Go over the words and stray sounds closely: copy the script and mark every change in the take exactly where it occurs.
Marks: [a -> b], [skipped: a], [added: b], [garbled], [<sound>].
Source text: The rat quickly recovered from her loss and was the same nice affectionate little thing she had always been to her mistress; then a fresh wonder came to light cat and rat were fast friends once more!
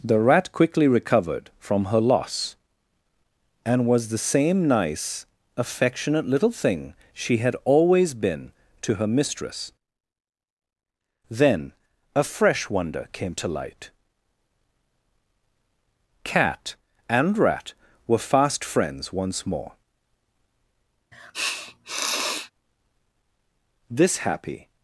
The rat quickly recovered from her loss and was the same nice affectionate little thing she had always been to her mistress; then a fresh wonder came to light cat and rat were fast friends once more! [sniff] [added: This happy]